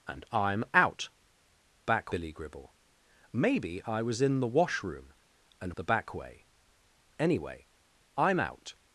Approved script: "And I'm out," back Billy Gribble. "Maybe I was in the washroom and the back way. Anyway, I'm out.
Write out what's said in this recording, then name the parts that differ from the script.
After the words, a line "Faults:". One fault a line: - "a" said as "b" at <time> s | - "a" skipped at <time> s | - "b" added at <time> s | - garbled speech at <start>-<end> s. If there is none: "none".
"And I'm out," back Billy Gribble. "Maybe I was in the washroom and the back way. Anyway, I'm out.
Faults:
none